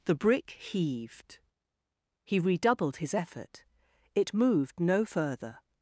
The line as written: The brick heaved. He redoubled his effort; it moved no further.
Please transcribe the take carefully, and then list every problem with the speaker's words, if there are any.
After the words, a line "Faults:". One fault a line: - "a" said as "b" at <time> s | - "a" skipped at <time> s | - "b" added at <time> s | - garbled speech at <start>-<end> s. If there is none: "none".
The brick heaved. He redoubled his effort; it moved no further.
Faults:
none